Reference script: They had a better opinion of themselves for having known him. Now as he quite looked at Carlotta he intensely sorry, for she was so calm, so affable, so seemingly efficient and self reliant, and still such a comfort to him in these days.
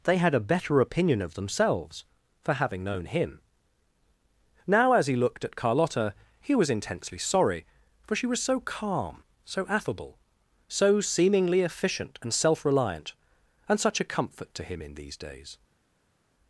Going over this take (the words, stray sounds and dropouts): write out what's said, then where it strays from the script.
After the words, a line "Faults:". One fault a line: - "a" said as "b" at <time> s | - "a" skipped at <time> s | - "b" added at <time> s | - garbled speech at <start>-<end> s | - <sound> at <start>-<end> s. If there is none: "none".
They had a better opinion of themselves for having known him. Now as he looked at Carlotta he was intensely sorry, for she was so calm, so affable, so seemingly efficient and self reliant, and such a comfort to him in these days.
Faults:
- "quite" skipped at 5.2 s
- "was" added at 6.5 s
- "still" skipped at 13.8 s